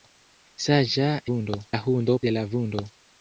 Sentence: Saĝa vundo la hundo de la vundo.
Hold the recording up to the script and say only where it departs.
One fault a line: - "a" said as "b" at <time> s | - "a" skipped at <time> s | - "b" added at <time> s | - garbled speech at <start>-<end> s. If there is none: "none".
none